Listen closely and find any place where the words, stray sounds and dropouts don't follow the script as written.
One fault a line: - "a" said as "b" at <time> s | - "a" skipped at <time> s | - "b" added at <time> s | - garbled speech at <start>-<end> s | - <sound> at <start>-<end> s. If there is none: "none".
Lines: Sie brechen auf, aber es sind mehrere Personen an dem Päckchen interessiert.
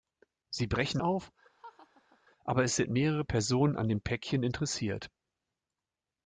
- laugh at 1.6-2.2 s